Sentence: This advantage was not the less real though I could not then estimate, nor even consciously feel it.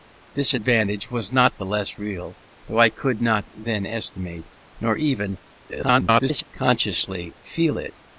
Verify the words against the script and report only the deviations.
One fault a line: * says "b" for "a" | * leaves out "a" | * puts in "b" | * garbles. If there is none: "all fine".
* garbles